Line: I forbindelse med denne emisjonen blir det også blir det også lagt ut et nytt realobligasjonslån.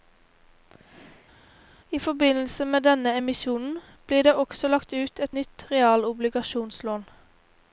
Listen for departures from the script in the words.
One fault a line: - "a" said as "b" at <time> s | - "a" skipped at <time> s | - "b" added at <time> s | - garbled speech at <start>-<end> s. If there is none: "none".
- "blir det også" skipped at 4.7 s